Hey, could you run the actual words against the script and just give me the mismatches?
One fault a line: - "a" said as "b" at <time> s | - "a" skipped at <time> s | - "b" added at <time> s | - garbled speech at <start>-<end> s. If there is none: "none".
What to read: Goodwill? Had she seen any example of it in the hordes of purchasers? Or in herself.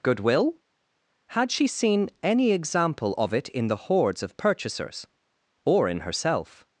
none